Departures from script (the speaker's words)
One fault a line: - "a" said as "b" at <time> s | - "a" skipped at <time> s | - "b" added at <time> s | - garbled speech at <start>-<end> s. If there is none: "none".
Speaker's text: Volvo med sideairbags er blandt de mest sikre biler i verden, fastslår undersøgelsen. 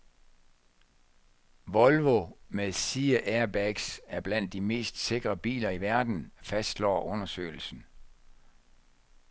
none